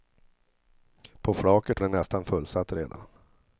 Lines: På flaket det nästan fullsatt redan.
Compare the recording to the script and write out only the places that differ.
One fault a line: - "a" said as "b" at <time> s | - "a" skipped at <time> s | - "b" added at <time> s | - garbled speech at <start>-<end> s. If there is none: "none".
none